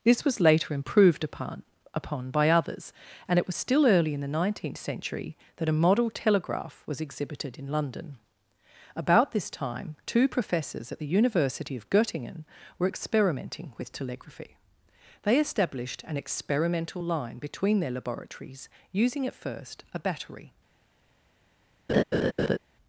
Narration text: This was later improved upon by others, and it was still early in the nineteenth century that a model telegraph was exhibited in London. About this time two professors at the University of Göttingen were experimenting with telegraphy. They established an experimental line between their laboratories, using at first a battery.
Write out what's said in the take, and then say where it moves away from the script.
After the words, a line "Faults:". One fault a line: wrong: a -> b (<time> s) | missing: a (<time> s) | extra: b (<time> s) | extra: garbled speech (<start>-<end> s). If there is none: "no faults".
This was later improved upon upon by others, and it was still early in the nineteenth century that a model telegraph was exhibited in London. About this time two professors at the University of Göttingen were experimenting with telegraphy. They established an experimental line between their laboratories, using at first a battery.
Faults:
extra: upon (1.9 s)